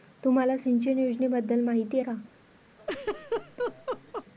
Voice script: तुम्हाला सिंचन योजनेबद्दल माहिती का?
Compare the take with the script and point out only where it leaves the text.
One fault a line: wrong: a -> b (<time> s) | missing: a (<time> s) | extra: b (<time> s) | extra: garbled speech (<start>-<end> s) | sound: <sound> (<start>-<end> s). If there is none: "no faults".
sound: laugh (2.8-4.3 s)